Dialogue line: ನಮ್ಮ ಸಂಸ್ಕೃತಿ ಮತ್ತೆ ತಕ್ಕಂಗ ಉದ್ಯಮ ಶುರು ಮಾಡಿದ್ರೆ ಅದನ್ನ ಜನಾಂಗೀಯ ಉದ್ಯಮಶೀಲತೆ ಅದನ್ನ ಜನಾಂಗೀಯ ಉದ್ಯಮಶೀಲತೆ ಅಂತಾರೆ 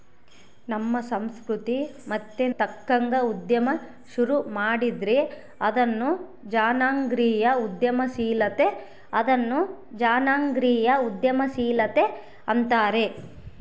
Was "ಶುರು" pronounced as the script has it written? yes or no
yes